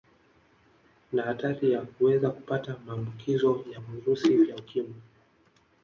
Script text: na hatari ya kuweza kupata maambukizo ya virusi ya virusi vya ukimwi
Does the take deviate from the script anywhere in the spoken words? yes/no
yes